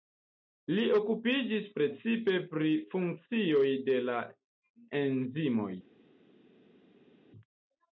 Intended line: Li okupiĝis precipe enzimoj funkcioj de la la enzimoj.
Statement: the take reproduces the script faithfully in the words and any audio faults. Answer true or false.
false